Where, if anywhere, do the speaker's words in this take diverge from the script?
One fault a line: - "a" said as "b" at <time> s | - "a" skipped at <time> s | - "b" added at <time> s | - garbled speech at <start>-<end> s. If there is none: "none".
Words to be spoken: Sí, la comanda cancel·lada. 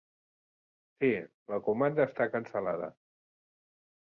- "està" added at 2.1 s